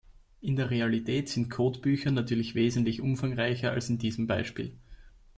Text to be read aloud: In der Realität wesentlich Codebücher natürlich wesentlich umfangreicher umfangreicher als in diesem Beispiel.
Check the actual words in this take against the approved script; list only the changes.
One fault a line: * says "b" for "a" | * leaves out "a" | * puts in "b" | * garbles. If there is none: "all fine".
* says "sind" for "wesentlich"
* leaves out "umfangreicher"